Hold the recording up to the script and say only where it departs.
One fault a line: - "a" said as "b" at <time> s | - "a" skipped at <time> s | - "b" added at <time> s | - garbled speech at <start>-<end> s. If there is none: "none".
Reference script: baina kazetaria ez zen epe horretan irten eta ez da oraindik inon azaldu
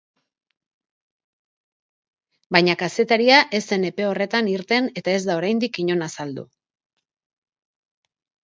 none